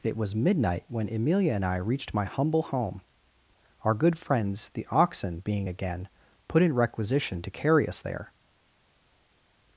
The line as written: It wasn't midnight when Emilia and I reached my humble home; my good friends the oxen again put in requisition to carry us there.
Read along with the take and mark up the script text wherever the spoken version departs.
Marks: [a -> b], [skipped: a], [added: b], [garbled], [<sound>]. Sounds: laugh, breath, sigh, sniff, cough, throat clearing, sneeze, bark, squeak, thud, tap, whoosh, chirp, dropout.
It [wasn't -> was] midnight when Emilia and I reached my humble home; [my -> our] good friends the oxen [added: being] again put in requisition to carry us there.